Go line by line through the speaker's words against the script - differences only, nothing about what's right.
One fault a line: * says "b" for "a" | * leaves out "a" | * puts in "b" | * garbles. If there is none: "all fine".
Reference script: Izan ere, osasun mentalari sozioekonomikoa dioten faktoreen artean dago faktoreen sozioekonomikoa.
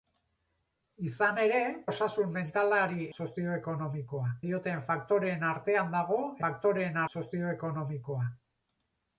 all fine